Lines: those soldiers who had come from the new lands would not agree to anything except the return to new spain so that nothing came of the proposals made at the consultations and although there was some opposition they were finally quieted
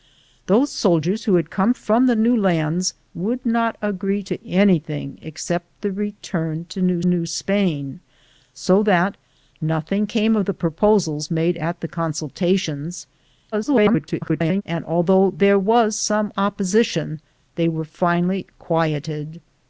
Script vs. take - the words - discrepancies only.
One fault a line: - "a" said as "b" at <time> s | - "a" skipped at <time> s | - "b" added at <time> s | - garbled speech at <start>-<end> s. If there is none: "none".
- "new" added at 7.0 s
- garbled speech at 13.5-14.6 s